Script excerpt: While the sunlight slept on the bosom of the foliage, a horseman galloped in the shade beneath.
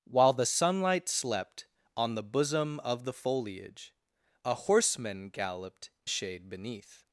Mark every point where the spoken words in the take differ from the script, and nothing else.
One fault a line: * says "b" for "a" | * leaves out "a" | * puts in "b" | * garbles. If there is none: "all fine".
* leaves out "in the"